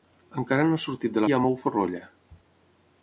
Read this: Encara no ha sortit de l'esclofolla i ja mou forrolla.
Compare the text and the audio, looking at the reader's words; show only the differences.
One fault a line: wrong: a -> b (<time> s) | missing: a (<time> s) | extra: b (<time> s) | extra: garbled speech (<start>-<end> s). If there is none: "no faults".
missing: l'esclofolla (1.2 s)